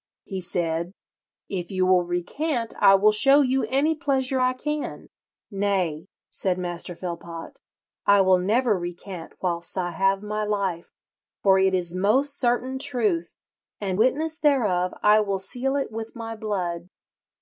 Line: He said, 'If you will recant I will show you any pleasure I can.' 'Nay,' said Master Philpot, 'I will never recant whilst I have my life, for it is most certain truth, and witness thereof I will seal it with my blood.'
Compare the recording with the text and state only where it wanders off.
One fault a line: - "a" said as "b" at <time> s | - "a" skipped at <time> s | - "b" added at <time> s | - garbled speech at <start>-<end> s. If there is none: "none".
none